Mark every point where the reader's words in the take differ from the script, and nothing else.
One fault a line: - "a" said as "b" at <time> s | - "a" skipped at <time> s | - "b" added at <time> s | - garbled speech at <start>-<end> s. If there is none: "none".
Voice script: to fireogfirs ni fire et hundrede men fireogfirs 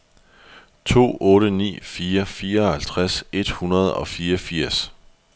- "fireogfirs" said as "otte" at 1.2 s
- "fireoghalvtreds" added at 2.3 s
- "men" said as "og" at 3.9 s